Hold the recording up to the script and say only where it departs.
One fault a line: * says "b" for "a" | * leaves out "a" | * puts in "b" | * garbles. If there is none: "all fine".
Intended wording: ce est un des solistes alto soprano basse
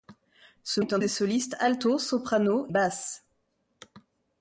all fine